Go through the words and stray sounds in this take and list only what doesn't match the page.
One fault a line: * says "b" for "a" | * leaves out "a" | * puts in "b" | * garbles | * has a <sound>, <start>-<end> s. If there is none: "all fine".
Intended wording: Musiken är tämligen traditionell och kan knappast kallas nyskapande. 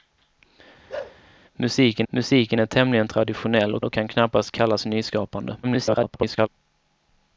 * has a bark, 0.9-1.2 s
* puts in "musiken"
* puts in "och"
* garbles